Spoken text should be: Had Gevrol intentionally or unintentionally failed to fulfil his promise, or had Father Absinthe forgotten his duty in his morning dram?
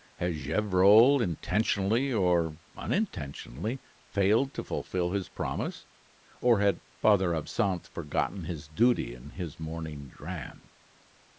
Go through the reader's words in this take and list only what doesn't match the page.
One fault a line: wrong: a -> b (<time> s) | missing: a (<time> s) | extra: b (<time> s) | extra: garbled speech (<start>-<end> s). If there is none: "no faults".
no faults